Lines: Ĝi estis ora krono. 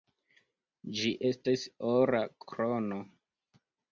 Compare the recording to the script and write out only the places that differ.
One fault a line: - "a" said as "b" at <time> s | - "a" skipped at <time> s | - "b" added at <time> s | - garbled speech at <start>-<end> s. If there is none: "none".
none